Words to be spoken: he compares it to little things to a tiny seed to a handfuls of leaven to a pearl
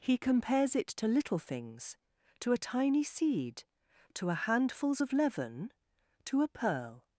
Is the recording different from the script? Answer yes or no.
no